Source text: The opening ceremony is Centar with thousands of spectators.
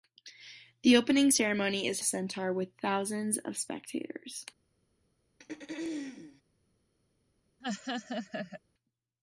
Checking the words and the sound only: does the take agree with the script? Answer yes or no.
no